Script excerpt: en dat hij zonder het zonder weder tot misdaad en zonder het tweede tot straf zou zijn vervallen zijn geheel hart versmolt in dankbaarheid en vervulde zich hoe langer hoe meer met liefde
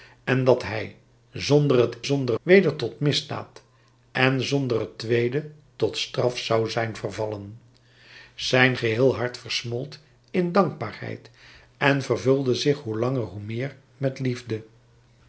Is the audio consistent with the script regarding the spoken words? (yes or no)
yes